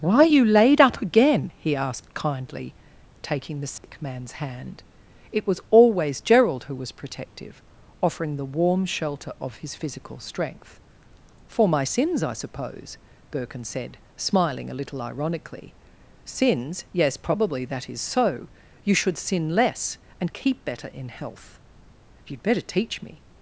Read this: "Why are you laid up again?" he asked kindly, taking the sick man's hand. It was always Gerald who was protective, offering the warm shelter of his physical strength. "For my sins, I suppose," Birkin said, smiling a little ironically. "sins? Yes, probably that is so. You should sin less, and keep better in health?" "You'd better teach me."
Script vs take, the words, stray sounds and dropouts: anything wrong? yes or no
yes